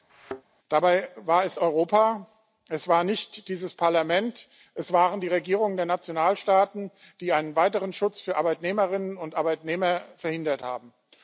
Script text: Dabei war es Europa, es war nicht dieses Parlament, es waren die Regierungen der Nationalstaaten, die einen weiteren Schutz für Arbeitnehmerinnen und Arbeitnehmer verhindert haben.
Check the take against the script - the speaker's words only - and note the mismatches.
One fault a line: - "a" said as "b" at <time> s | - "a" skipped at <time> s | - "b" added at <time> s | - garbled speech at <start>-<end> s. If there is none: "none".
none